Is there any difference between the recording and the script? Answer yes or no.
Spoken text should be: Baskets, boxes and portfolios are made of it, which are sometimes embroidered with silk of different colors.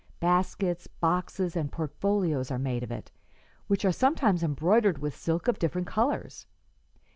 no